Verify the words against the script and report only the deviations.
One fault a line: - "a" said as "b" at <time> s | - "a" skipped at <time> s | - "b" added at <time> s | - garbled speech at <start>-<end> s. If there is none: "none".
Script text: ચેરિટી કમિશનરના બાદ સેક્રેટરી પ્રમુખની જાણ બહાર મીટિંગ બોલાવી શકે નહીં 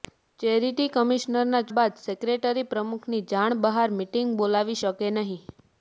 none